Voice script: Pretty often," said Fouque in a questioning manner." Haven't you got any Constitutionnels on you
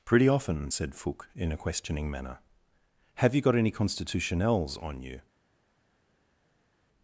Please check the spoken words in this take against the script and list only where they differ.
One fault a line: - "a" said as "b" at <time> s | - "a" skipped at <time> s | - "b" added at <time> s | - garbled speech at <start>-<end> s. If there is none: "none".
- "Haven't" said as "Have" at 3.1 s